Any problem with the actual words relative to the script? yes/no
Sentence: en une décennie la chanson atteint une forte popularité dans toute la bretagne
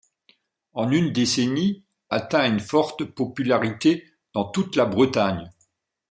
yes